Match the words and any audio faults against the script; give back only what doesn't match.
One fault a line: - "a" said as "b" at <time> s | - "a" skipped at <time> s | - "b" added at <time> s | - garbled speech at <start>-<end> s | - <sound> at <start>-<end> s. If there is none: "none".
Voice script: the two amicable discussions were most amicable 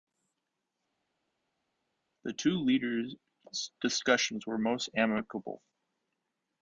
- "amicable" said as "leaders" at 2.6 s